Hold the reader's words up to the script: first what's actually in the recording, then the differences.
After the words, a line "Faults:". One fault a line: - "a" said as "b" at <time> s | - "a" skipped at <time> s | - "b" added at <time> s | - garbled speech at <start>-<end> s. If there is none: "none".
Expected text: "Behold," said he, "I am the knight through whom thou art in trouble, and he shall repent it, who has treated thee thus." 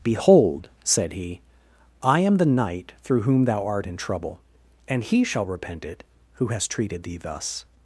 "Behold," said he, "I am the knight through whom thou art in trouble, and he shall repent it, who has treated thee thus."
Faults:
none